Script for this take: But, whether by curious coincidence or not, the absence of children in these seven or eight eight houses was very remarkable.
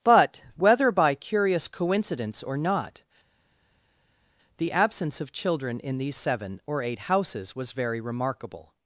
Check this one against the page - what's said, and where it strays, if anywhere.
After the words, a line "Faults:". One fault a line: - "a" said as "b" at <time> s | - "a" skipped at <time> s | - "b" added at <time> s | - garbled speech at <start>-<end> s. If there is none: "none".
But, whether by curious coincidence or not, the absence of children in these seven or eight houses was very remarkable.
Faults:
- "eight" skipped at 7.0 s